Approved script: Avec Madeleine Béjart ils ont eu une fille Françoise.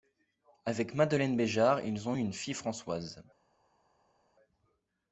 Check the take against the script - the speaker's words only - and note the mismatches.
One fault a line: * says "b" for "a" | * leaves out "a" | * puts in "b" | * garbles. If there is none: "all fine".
all fine